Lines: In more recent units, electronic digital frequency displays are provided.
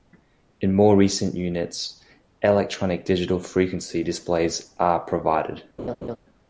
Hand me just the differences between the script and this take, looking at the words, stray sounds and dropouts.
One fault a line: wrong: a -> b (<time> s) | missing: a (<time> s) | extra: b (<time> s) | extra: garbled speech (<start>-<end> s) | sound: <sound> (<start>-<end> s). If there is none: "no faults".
sound: laugh (5.8-6.2 s)